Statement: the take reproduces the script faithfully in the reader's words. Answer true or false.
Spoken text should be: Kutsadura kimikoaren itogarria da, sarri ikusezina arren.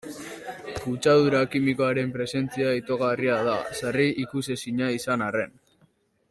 false